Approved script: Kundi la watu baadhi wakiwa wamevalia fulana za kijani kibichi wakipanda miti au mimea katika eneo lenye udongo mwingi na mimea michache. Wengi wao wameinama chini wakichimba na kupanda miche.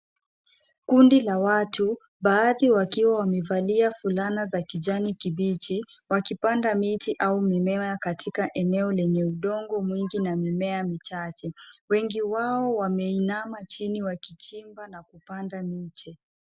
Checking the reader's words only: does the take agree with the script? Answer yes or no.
yes